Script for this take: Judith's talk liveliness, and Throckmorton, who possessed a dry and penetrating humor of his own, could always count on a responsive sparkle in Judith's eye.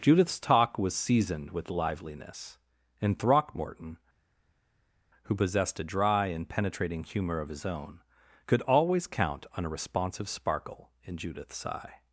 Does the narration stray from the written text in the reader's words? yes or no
yes